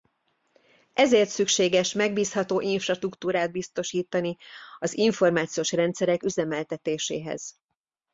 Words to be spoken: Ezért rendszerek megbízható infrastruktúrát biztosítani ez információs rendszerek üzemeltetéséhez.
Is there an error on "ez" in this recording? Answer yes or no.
yes